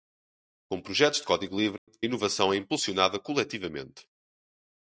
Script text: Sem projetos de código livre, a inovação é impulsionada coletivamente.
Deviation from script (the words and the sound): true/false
true